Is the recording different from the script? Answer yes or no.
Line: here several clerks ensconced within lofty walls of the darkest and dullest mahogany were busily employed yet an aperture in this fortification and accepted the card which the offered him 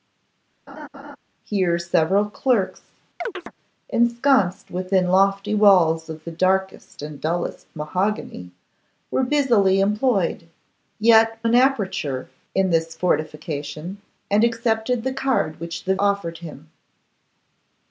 no